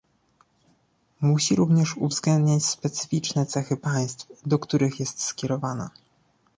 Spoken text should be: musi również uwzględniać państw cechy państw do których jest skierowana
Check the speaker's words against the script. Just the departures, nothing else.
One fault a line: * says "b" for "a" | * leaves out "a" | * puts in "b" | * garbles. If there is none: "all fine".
* says "specyficzne" for "państw"